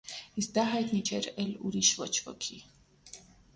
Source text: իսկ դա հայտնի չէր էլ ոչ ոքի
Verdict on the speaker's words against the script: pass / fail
fail